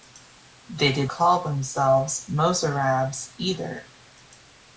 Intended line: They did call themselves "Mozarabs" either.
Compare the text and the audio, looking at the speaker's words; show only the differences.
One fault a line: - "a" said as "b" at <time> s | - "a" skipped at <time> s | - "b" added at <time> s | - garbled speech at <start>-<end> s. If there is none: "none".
none